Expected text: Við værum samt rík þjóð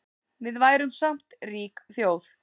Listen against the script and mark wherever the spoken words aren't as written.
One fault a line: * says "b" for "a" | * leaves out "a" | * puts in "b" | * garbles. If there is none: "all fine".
all fine